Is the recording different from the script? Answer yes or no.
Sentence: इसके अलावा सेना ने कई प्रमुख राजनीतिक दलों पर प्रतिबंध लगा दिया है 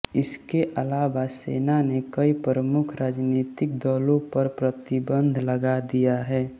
no